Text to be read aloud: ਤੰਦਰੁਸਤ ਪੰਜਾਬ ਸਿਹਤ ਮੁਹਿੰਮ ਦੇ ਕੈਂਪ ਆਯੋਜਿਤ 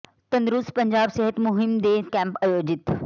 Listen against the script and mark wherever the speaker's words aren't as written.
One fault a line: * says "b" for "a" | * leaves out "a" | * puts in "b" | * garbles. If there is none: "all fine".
all fine